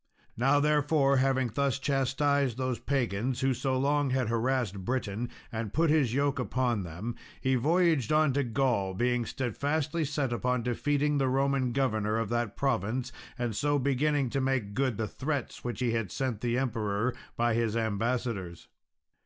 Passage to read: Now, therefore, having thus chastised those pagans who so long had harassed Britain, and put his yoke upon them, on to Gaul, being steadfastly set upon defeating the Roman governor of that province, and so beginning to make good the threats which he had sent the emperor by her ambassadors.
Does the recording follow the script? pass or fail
fail